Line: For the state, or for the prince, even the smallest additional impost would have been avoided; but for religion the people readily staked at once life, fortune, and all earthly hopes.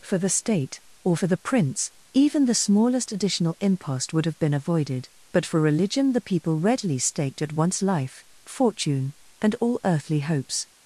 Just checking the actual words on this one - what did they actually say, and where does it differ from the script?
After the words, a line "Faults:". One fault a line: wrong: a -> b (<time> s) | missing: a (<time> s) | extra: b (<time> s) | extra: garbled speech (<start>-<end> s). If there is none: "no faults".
For the state, or for the prince, even the smallest additional impost would have been avoided; but for religion the people readily staked at once life, fortune, and all earthly hopes.
Faults:
no faults